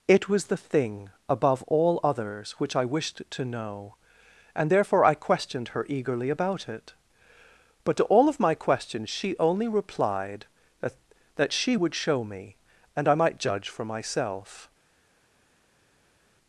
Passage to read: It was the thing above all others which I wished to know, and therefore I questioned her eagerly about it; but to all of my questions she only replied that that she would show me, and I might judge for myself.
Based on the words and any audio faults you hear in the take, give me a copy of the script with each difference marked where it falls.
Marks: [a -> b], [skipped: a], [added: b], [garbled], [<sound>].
It was the thing above all others which I wished to know, and therefore I questioned her eagerly about it; but to all of my questions she only replied that that she would show me, and I might judge for myself.